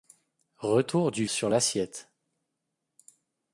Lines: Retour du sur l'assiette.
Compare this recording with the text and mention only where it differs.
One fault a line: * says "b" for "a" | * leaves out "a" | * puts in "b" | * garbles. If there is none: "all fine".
all fine